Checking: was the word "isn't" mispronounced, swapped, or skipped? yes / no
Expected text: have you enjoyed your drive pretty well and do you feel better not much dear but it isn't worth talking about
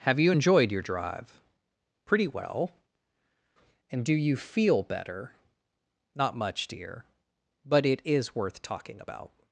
yes